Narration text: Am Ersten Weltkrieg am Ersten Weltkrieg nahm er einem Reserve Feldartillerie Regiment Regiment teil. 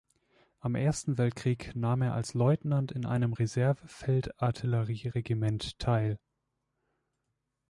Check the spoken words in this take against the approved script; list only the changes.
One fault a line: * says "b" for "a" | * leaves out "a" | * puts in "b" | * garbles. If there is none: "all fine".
* says "nahm er als Leutnant in" for "am Ersten Weltkrieg nahm er"
* leaves out "Regiment"